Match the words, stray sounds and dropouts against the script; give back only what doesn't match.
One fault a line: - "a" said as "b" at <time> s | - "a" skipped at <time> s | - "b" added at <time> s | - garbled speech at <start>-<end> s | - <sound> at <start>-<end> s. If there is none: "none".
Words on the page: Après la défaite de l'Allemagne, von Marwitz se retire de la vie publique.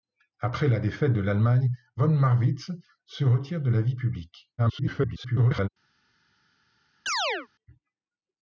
- garbled speech at 4.6-5.7 s
- chirp at 7.1-7.5 s